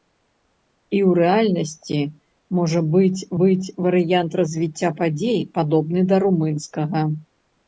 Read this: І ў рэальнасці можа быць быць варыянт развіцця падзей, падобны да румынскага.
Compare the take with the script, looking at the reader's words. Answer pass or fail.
pass